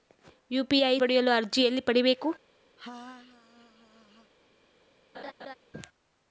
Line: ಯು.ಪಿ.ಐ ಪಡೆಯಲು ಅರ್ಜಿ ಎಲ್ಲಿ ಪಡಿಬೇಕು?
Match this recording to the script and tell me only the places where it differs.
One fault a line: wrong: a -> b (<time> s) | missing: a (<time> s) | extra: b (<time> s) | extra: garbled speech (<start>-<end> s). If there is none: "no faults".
no faults